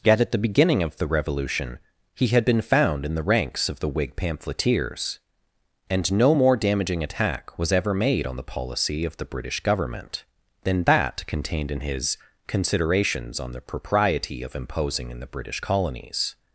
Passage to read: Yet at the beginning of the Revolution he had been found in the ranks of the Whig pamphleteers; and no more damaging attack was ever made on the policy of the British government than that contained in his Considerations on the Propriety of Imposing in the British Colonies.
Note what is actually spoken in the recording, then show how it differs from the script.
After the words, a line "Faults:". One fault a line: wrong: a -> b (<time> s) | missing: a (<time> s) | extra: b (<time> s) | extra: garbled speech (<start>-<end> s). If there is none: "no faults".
Yet at the beginning of the Revolution he had been found in the ranks of the Whig pamphleteers; and no more damaging attack was ever made on the policy of the British government than that contained in his Considerations on the Propriety of Imposing in the British Colonies.
Faults:
no faults